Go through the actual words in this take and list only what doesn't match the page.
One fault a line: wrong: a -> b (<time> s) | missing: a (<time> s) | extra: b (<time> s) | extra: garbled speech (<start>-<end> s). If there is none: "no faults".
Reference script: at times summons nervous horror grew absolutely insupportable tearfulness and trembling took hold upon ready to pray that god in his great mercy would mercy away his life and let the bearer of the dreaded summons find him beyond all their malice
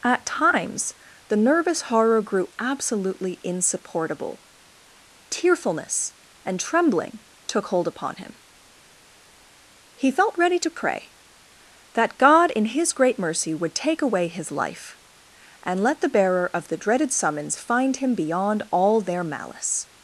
wrong: summons -> the (1.3 s)
extra: him he felt (8.2 s)
wrong: mercy -> take (13.8 s)